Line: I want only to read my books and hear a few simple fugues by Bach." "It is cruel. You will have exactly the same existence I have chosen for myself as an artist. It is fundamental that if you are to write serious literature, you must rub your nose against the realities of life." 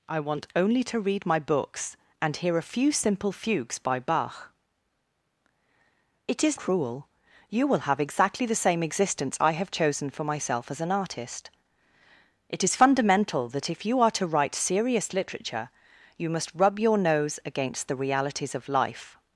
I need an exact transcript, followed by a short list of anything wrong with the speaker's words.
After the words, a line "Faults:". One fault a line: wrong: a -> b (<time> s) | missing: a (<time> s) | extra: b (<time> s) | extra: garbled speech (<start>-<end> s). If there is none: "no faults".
I want only to read my books and hear a few simple fugues by Bach." "It is cruel. You will have exactly the same existence I have chosen for myself as an artist. It is fundamental that if you are to write serious literature, you must rub your nose against the realities of life."
Faults:
no faults